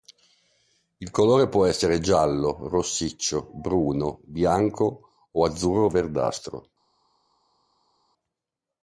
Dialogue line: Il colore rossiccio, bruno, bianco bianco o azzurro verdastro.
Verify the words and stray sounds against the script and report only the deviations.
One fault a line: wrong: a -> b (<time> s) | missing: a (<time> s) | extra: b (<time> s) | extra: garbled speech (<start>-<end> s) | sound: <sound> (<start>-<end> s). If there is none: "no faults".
extra: può essere giallo (1.5 s)
missing: bianco (5.1 s)